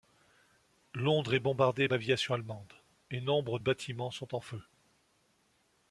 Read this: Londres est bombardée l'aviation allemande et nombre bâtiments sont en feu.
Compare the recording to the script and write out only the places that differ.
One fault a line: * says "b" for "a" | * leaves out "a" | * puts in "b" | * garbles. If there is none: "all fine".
all fine